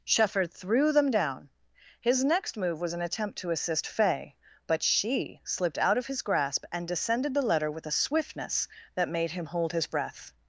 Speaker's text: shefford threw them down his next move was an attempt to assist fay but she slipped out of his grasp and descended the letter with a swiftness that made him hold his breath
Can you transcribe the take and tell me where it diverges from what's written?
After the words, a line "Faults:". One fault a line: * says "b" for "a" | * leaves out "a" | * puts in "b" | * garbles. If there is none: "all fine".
shefford threw them down his next move was an attempt to assist fay but she slipped out of his grasp and descended the letter with a swiftness that made him hold his breath
Faults:
all fine